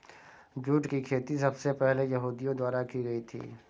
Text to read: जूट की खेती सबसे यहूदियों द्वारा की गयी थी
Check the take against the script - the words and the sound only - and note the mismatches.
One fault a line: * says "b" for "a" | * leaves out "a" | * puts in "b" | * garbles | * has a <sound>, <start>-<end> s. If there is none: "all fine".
* puts in "पहले"